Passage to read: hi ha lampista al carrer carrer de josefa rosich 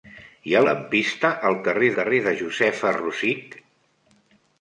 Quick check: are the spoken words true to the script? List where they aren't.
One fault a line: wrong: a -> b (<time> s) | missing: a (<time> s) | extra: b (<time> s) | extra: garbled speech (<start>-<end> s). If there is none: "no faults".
no faults